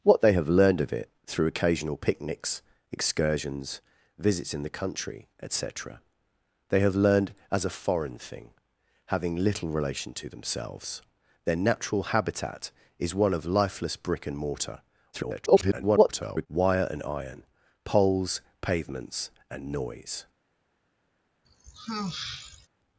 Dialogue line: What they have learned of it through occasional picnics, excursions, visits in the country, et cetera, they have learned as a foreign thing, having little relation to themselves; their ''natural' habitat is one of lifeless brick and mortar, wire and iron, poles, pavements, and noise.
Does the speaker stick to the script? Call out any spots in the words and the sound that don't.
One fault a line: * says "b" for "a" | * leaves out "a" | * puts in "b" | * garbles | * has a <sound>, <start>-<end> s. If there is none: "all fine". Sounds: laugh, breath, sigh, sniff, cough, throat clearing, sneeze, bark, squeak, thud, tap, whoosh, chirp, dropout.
* garbles
* has a sigh, 21.4-22.7 s